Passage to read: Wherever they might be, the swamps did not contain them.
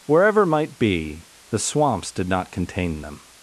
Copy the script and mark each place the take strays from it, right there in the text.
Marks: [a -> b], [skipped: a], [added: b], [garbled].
Wherever [skipped: they] might be, the swamps did not contain them.